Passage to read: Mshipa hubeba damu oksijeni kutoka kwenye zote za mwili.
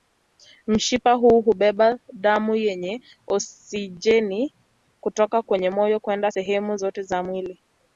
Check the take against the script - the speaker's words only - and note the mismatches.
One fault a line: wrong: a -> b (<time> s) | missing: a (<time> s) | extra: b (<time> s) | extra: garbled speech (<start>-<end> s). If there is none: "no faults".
extra: huu (1.1 s)
extra: yenye (2.5 s)
extra: moyo kwenda sehemu (5.7 s)